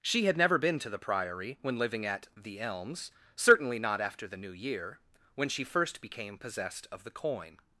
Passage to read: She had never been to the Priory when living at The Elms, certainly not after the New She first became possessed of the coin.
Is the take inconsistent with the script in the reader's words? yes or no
yes